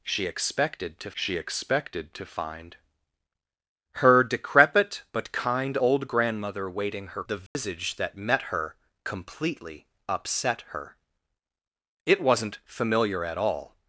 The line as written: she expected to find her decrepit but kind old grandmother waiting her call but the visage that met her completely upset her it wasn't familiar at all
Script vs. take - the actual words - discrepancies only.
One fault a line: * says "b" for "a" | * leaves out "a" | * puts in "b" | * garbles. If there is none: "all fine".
* puts in "she expected to"
* leaves out "call but"